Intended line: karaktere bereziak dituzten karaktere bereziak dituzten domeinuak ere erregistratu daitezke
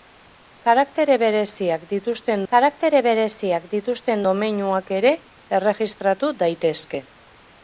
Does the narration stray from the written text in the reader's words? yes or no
no